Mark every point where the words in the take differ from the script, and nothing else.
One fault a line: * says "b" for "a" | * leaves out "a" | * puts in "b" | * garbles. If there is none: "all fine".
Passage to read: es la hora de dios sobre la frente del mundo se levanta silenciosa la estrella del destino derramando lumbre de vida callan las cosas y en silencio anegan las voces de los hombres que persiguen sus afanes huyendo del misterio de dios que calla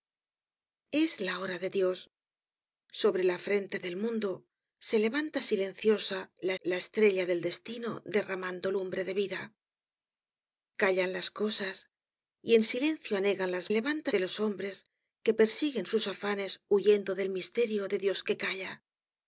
* puts in "la"
* says "levanta" for "voces"